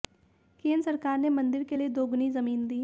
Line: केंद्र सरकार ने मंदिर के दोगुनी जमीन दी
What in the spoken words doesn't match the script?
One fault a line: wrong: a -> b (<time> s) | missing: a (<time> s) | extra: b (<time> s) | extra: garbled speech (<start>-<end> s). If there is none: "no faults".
extra: लिए (1.8 s)